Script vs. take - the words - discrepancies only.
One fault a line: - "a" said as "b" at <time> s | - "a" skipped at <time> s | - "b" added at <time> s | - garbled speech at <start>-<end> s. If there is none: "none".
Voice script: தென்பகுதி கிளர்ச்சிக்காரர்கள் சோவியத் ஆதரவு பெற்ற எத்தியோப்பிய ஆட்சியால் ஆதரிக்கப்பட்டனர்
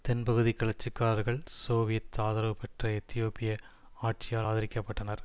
none